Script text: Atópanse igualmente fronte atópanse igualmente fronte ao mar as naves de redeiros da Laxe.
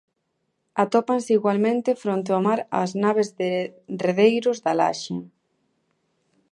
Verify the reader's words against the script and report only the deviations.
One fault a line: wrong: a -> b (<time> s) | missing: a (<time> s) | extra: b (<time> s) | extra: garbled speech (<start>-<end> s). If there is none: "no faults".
missing: atópanse igualmente fronte (2.3 s)